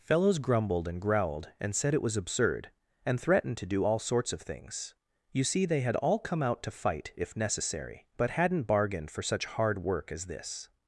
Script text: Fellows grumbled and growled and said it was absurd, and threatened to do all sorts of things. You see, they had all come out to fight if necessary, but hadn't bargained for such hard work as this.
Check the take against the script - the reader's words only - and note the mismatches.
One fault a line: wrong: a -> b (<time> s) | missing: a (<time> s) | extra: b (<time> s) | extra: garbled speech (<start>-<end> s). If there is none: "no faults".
no faults